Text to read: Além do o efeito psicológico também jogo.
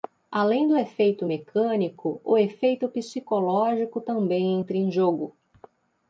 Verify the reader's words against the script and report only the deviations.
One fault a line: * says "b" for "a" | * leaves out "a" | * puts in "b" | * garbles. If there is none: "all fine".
* puts in "efeito mecânico"
* puts in "entra em"